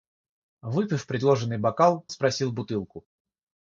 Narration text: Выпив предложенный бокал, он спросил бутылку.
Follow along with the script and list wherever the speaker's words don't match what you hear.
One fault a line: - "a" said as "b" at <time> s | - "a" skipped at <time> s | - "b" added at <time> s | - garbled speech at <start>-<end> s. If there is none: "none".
- "он" skipped at 2.1 s